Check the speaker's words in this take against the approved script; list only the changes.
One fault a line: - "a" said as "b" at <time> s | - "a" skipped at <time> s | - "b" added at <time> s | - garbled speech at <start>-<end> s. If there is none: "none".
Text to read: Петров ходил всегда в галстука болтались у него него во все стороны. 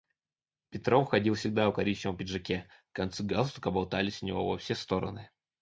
- "коричневом пиджаке концы" added at 1.7 s
- "него" skipped at 4.5 s